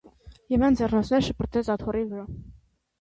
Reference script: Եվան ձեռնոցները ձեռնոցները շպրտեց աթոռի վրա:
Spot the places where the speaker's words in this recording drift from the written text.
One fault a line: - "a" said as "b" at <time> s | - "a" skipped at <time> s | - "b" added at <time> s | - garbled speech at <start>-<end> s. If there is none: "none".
- "ձեռնոցները" skipped at 1.3 s